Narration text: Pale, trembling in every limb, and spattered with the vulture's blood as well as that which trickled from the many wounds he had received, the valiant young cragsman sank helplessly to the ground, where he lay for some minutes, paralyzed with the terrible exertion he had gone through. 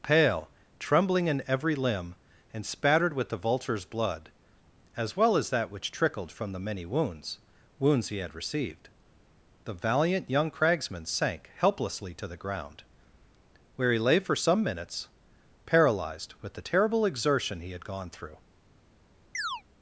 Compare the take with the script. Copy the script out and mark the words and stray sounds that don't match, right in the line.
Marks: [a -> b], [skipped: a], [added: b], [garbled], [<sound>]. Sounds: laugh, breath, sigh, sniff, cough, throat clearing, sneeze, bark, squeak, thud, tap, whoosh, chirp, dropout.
Pale, trembling in every limb, and spattered with the vulture's blood as well as that which trickled from the many wounds [added: wounds] he had received, the valiant young cragsman sank helplessly to the ground, where he lay for some minutes, paralyzed with the terrible exertion he had gone through. [chirp]